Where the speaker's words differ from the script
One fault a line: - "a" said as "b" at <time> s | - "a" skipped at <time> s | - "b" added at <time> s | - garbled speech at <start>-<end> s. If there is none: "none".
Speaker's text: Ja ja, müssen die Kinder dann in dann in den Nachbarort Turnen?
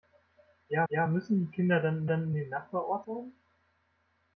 none